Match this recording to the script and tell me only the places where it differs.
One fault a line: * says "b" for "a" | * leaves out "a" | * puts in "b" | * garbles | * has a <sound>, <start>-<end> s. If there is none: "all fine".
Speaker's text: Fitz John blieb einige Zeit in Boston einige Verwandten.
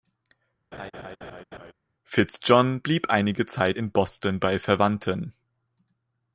* has a laugh, 0.7-1.7 s
* says "bei" for "einige"